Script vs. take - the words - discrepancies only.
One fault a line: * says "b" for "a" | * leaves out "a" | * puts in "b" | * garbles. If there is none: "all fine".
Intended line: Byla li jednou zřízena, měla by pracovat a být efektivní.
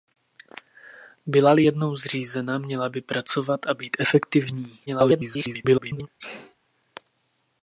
* garbles